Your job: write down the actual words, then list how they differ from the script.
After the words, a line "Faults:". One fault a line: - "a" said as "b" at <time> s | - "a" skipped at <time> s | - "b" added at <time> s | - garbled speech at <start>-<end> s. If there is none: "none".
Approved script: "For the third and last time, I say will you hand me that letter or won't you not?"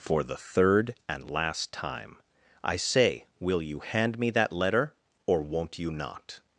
"For the third and last time, I say will you hand me that letter or won't you not?"
Faults:
none